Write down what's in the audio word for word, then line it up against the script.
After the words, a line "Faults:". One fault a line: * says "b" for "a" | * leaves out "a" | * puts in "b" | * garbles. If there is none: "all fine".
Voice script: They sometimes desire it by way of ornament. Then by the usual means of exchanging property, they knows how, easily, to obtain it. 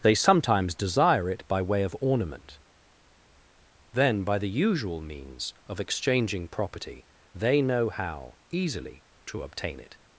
They sometimes desire it by way of ornament. Then by the usual means of exchanging property, they know how, easily, to obtain it.
Faults:
* says "know" for "knows"